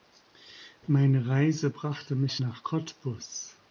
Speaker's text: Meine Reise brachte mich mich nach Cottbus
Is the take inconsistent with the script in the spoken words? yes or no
yes